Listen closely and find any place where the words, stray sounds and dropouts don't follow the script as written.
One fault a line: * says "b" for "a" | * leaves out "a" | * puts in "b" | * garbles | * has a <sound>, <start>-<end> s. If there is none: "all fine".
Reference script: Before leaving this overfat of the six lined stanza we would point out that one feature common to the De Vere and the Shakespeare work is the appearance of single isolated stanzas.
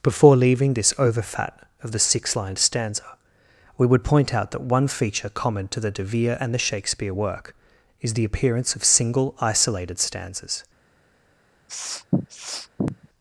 * has a sniff, 11.7-13.1 s